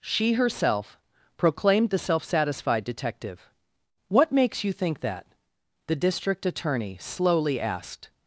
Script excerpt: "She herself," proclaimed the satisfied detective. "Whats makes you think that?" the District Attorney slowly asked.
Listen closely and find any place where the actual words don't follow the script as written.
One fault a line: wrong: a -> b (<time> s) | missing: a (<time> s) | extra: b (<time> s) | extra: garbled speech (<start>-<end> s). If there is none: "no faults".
extra: self (2.0 s)
wrong: Whats -> What (4.1 s)